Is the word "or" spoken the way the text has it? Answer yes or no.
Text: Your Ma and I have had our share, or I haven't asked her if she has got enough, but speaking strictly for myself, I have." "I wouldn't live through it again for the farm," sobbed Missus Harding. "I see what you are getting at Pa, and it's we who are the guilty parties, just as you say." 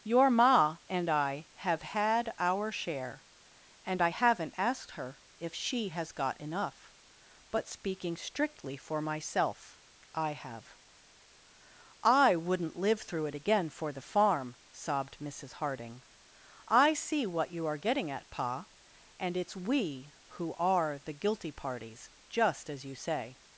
no